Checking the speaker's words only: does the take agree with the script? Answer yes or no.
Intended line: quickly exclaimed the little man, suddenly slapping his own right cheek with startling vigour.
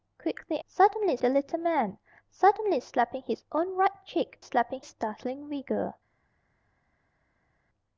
no